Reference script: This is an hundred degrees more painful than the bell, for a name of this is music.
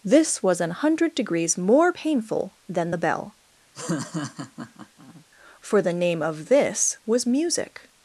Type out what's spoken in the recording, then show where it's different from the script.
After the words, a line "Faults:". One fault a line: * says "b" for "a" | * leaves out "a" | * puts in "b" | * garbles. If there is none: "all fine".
This was an hundred degrees more painful than the bell, for the name of this was music.
Faults:
* says "was" for "is"
* says "the" for "a"
* says "was" for "is"